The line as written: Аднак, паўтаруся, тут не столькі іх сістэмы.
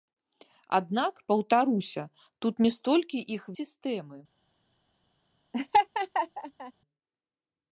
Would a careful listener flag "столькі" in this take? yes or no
no